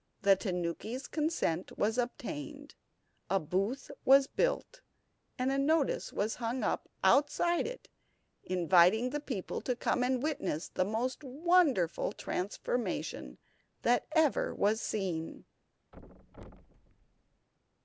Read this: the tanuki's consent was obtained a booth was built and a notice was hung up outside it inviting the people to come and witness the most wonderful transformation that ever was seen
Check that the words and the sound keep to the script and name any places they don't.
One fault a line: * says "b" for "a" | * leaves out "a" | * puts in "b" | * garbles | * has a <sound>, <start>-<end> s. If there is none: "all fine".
* has a thud, 15.9-17.5 s